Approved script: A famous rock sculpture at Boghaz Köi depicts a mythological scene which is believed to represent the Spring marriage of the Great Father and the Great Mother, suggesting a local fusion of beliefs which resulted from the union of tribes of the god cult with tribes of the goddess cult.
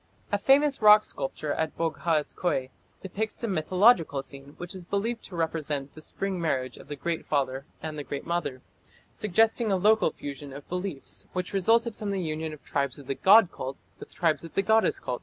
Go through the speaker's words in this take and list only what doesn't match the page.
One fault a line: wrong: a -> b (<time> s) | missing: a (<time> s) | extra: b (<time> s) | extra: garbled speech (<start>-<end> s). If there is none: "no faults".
no faults